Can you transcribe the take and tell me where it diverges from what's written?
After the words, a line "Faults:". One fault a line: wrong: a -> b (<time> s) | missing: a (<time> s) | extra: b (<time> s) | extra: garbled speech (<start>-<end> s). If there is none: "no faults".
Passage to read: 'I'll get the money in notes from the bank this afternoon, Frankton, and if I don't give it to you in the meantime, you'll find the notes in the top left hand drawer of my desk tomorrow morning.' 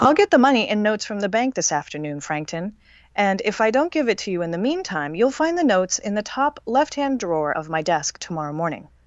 'I'll get the money in notes from the bank this afternoon, Frankton, and if I don't give it to you in the meantime, you'll find the notes in the top left hand drawer of my desk tomorrow morning.'
Faults:
no faults